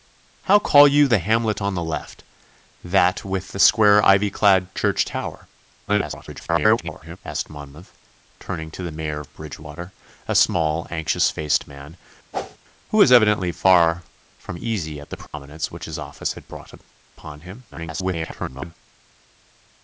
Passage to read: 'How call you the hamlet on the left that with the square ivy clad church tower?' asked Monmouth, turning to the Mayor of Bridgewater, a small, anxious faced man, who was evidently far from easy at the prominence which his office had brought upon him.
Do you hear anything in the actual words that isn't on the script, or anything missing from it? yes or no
yes